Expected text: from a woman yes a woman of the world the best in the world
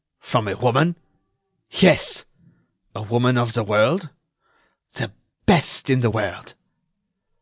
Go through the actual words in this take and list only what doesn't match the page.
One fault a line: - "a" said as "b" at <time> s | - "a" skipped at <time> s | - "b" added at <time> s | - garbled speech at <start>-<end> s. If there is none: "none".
none